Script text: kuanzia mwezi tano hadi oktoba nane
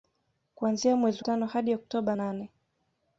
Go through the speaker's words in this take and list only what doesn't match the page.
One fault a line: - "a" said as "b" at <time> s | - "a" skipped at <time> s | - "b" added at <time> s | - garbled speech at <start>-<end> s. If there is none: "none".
none